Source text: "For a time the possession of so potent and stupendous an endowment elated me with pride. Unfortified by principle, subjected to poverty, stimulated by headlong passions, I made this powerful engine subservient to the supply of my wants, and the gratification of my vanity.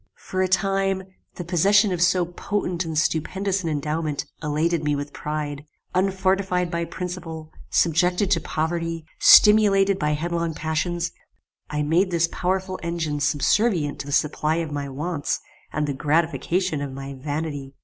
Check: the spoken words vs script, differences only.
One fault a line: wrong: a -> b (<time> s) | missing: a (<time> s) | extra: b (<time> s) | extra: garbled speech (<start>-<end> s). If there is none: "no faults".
no faults